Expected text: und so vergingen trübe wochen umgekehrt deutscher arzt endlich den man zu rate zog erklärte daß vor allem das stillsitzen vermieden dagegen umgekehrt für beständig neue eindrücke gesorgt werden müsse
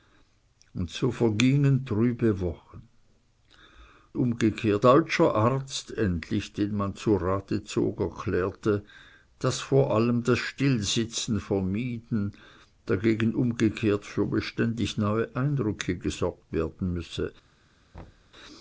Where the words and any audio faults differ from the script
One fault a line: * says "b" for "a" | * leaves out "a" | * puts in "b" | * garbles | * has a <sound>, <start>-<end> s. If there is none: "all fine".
* has a thud, 17.9-18.3 s